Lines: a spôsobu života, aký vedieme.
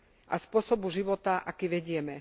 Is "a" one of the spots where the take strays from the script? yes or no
no